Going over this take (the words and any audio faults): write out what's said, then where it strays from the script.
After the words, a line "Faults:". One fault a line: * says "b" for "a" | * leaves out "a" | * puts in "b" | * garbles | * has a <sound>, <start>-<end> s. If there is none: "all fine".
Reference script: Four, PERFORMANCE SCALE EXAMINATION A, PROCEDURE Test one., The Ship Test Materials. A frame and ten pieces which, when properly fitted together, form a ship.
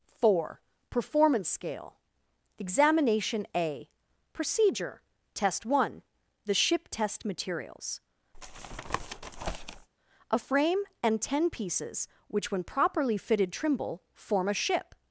Four, PERFORMANCE SCALE EXAMINATION A, PROCEDURE Test one., The Ship Test Materials. A frame and ten pieces which, when properly fitted trimble, form a ship.
Faults:
* has a tap, 8.3-9.9 s
* says "trimble" for "together"